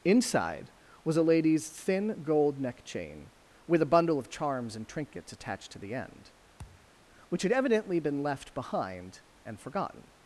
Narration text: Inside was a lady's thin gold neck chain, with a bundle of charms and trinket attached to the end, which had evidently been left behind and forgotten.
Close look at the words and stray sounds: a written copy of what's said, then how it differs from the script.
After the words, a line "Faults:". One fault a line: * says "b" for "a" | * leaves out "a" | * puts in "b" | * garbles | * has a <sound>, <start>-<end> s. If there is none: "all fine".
Inside was a lady's thin gold neck chain, with a bundle of charms and trinkets attached to the end, which had evidently been left behind and forgotten.
Faults:
* says "trinkets" for "trinket"
* has a thud, 6.6-6.9 s